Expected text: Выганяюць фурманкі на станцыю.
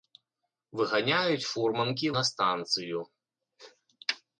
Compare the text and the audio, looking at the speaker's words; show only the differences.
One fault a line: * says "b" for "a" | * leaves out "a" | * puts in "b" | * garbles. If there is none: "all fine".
all fine